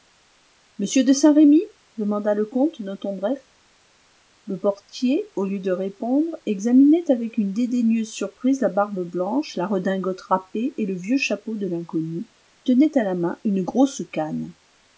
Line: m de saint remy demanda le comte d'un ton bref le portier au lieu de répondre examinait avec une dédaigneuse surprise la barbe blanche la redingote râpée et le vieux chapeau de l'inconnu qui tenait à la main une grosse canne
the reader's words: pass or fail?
fail